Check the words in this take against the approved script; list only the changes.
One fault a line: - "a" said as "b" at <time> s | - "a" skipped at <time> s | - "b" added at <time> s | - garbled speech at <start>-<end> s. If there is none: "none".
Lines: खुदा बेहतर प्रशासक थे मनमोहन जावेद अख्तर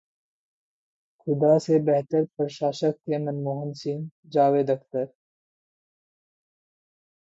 - "से" added at 1.6 s
- "सिंह" added at 3.8 s